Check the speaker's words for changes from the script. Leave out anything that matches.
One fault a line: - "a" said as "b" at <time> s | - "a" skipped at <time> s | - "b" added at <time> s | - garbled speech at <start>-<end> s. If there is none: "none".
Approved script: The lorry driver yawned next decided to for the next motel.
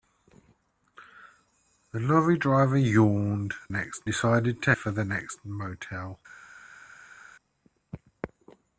none